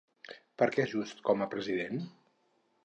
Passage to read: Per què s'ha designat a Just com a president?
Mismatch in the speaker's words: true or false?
true